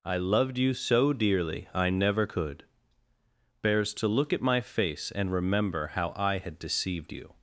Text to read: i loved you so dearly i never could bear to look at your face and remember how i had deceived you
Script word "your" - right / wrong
wrong